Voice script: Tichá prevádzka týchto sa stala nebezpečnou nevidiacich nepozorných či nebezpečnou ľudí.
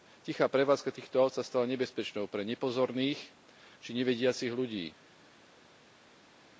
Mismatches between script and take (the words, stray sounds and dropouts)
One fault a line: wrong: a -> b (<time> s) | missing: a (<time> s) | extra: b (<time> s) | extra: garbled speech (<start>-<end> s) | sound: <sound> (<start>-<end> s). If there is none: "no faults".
extra: áut (1.2 s)
wrong: nevidiacich -> pre (2.2 s)
wrong: nebezpečnou -> nevidiacich (3.9 s)